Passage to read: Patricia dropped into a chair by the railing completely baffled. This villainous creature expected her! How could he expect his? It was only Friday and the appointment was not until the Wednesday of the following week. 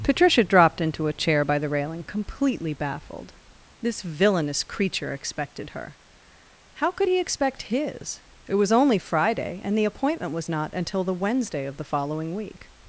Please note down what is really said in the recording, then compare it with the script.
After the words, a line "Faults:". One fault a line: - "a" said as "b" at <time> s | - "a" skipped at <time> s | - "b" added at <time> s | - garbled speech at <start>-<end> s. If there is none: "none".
Patricia dropped into a chair by the railing completely baffled. This villainous creature expected her! How could he expect his? It was only Friday and the appointment was not until the Wednesday of the following week.
Faults:
none